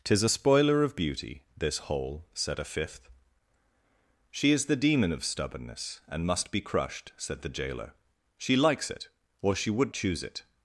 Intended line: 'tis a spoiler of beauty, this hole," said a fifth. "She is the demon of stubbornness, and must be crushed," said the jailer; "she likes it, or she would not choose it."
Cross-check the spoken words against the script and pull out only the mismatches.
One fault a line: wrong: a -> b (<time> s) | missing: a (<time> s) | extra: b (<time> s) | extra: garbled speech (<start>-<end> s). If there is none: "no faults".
missing: not (9.9 s)